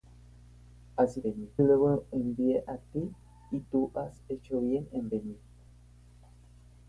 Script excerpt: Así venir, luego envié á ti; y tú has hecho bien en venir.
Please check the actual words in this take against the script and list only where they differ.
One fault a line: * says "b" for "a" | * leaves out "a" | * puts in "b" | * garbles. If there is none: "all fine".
all fine